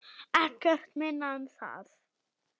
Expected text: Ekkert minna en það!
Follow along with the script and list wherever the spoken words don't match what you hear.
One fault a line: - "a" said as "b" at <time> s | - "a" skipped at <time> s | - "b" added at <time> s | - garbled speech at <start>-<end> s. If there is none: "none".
none